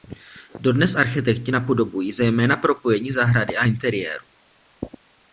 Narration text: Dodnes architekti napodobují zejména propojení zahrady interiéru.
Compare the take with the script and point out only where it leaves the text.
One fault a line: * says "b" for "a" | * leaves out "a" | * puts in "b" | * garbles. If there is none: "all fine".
* puts in "a"